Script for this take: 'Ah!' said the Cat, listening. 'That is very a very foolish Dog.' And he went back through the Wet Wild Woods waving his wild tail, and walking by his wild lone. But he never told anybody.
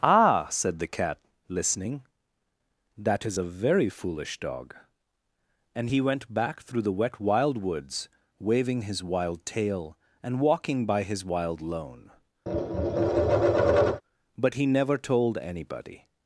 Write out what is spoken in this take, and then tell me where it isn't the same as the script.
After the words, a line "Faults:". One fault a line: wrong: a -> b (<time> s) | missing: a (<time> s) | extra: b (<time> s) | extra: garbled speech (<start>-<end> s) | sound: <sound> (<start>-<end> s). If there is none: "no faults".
'Ah!' said the Cat, listening. 'That is a very foolish Dog.' And he went back through the Wet Wild Woods waving his wild tail, and walking by his wild lone. But he never told anybody.
Faults:
missing: very (3.4 s)
sound: tap (12.5-14.0 s)